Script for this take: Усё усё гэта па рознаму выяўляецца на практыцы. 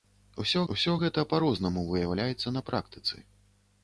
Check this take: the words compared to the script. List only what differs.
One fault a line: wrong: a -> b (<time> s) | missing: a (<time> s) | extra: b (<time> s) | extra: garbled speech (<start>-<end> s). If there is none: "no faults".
no faults